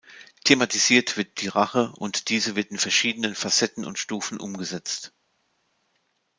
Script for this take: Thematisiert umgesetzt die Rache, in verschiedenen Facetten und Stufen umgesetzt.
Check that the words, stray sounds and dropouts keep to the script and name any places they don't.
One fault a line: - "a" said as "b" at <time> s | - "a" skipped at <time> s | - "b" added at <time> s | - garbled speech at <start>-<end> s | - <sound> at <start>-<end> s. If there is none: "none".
- "umgesetzt" said as "wird" at 1.1 s
- "und diese wird" added at 2.0 s